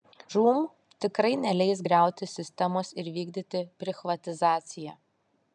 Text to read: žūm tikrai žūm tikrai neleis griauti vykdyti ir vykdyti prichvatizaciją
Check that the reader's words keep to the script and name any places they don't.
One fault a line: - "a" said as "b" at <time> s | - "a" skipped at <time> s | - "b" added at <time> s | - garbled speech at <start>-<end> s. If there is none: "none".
- "žūm tikrai" skipped at 1.3 s
- "vykdyti" said as "sistemos" at 2.3 s